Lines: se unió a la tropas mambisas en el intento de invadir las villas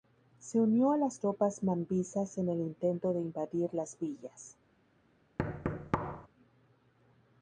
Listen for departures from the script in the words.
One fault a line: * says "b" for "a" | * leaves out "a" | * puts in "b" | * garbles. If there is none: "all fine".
* says "las" for "la"